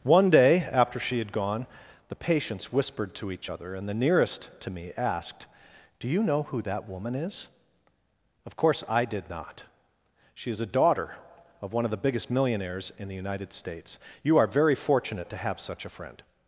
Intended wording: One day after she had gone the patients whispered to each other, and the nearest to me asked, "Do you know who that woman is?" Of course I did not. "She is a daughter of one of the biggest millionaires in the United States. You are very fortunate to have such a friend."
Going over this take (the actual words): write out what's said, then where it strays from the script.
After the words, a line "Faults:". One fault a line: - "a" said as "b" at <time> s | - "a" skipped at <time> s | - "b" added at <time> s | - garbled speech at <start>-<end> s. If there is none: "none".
One day after she had gone the patients whispered to each other, and the nearest to me asked, "Do you know who that woman is?" Of course I did not. "She is a daughter of one of the biggest millionaires in the United States. You are very fortunate to have such a friend."
Faults:
none